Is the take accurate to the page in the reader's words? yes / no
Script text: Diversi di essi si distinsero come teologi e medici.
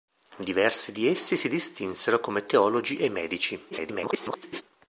no